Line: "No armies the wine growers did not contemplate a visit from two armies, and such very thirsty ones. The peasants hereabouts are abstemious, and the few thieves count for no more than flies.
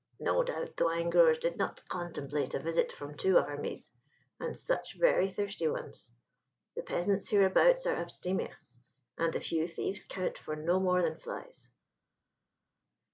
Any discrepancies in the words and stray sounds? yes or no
yes